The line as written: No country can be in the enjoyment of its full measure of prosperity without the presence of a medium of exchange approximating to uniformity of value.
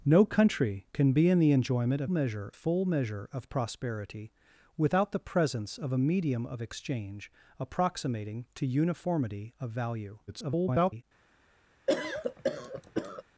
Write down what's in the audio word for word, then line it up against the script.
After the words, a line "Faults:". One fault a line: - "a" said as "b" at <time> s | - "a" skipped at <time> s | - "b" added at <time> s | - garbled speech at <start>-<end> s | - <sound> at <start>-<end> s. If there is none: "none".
No country can be in the enjoyment of measure full measure of prosperity without the presence of a medium of exchange approximating to uniformity of value. [garbled]
Faults:
- "its" said as "measure" at 2.1 s
- garbled speech at 10.3-11.0 s
- cough at 11.9-13.2 s